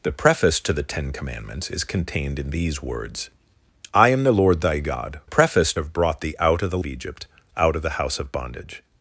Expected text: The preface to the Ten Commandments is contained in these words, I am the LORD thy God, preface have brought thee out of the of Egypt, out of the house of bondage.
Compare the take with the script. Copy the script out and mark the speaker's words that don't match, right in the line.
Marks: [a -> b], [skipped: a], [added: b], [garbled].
The preface to the Ten Commandments is contained in these words, I am the LORD thy God, preface have brought thee out of the of Egypt, out of the house of bondage.